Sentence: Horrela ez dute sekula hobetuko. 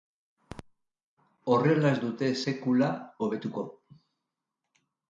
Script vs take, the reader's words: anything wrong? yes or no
no